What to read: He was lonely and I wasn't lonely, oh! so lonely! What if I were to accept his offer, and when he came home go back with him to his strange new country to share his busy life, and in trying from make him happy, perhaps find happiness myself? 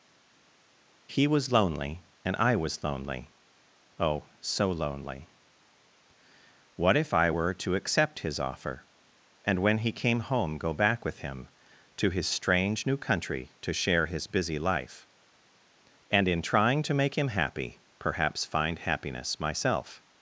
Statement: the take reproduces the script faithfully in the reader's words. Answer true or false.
false